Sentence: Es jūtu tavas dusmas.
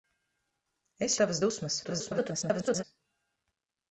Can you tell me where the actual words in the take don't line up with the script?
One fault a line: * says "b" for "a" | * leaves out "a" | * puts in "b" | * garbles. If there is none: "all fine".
* leaves out "jūtu"
* garbles